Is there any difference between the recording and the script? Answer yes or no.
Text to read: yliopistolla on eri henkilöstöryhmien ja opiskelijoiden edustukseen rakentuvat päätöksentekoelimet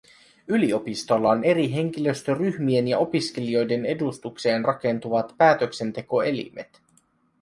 no